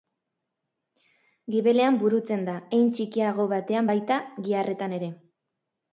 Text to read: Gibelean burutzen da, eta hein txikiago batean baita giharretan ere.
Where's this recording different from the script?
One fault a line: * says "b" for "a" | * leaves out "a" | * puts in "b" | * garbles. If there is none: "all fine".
* leaves out "eta"